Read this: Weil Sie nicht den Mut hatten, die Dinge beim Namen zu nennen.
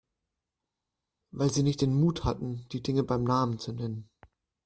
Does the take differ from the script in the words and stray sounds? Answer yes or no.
no